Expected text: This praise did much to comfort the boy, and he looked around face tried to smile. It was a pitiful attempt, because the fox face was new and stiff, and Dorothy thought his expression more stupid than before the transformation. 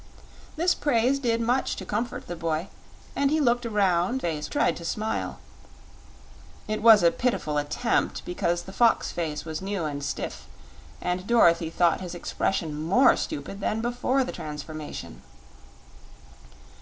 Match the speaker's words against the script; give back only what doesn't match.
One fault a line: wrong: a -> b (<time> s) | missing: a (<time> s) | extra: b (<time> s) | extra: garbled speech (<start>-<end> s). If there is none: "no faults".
no faults